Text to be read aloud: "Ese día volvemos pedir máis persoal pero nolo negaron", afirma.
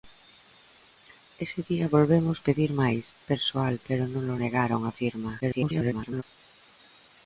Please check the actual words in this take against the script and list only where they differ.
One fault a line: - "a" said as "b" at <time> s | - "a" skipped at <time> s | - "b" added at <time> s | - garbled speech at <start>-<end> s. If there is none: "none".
- garbled speech at 5.4-6.2 s